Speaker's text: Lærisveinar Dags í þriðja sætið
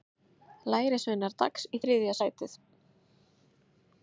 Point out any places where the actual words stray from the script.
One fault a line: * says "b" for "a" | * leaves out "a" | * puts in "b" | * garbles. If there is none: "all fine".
all fine